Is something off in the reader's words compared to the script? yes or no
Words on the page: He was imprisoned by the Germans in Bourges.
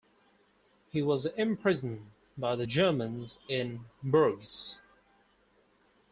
no